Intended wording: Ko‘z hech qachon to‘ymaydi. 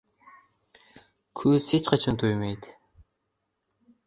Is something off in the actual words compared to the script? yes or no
no